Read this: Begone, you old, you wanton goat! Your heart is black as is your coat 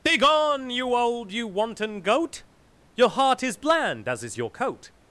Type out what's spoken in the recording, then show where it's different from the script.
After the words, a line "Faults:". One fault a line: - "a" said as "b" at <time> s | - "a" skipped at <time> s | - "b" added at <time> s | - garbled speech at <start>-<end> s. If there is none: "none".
Begone, you old, you wanton goat! Your heart is bland as is your coat
Faults:
- "black" said as "bland" at 3.5 s